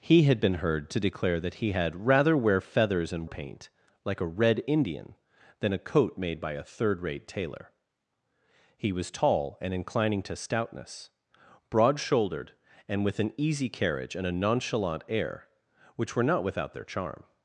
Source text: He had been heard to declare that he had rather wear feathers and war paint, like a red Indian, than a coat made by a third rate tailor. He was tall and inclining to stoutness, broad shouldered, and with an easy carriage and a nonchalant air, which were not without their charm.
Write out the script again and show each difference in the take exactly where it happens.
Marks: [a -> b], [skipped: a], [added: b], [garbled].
He had been heard to declare that he had rather wear feathers and [skipped: war] paint, like a red Indian, than a coat made by a third rate tailor. He was tall and inclining to stoutness, broad shouldered, and with an easy carriage and a nonchalant air, which were not without their charm.